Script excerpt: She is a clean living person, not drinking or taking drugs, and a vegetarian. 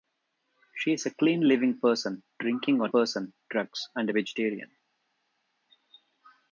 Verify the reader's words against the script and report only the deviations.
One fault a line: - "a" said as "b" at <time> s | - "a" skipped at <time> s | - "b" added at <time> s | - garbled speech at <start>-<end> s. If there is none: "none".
- "not" skipped at 2.2 s
- "taking" said as "person" at 2.9 s